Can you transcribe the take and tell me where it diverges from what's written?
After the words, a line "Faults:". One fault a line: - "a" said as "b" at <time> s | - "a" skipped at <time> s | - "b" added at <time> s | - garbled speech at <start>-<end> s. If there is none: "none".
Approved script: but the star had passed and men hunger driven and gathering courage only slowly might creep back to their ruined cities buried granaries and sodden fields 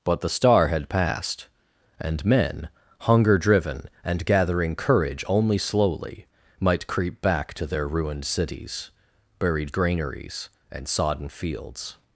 but the star had passed and men hunger driven and gathering courage only slowly might creep back to their ruined cities buried granaries and sodden fields
Faults:
none